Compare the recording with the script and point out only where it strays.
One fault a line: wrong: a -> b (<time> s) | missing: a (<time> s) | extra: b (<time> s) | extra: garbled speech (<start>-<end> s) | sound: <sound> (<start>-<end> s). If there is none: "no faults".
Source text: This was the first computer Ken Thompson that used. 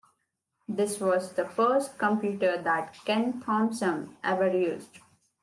extra: that (2.6 s)
wrong: that -> ever (4.2 s)